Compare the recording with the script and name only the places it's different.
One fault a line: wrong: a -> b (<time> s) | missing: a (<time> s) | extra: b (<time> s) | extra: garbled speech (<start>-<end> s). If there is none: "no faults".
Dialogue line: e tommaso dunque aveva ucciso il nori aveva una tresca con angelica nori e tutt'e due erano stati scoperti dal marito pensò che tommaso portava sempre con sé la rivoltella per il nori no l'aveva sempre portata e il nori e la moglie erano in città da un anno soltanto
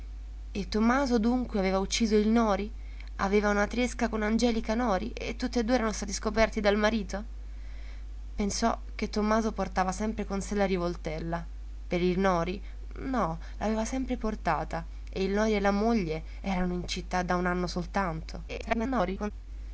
extra: garbled speech (18.5-19.3 s)